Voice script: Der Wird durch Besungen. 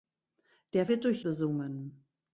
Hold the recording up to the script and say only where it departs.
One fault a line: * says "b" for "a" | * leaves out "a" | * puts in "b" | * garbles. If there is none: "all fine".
all fine